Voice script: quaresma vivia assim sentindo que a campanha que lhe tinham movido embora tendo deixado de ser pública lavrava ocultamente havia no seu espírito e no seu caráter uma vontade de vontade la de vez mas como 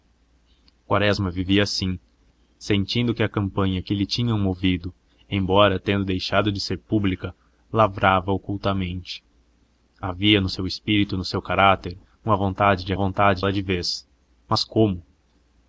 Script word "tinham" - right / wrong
right